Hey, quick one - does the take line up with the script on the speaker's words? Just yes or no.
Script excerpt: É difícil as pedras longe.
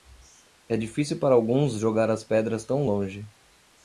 no